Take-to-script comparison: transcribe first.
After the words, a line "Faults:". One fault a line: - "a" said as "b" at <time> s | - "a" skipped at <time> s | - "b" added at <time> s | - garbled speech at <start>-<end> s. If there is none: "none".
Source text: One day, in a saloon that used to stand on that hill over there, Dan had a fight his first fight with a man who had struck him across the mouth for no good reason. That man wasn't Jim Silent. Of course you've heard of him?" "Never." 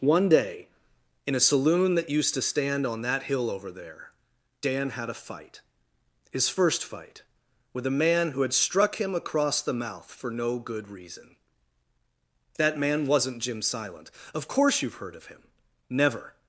One day, in a saloon that used to stand on that hill over there, Dan had a fight his first fight with a man who had struck him across the mouth for no good reason. That man wasn't Jim Silent. Of course you've heard of him?" "Never."
Faults:
none